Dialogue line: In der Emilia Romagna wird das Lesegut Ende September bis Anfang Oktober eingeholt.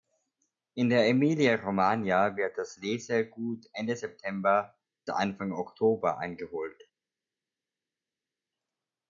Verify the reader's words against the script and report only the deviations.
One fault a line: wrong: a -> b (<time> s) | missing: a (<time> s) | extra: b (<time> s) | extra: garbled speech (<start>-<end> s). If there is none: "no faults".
missing: bis (4.8 s)